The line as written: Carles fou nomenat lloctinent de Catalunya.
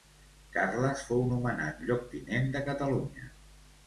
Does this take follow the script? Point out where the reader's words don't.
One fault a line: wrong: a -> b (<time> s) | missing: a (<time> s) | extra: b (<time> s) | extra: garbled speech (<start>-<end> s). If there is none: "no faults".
no faults